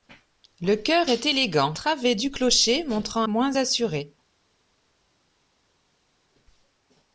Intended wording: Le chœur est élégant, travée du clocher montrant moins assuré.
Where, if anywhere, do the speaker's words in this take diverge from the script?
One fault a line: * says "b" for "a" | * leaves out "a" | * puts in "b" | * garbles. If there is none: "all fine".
all fine